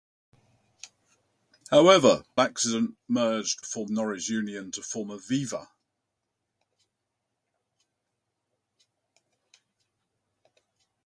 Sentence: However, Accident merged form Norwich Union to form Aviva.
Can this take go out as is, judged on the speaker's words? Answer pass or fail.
pass